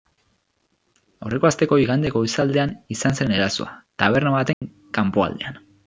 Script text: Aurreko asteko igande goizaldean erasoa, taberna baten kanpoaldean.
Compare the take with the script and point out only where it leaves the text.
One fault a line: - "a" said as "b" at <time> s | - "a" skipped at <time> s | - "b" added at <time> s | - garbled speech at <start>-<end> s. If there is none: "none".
- "izan zen" added at 3.0 s